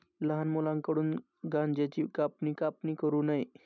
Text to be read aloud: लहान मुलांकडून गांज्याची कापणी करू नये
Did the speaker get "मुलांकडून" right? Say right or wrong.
right